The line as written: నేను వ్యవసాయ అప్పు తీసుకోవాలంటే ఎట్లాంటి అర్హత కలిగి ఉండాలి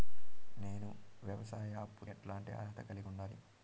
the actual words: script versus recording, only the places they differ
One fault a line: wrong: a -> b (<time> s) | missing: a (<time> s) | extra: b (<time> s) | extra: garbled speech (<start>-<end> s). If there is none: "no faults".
missing: తీసుకోవాలంటే (2.0 s)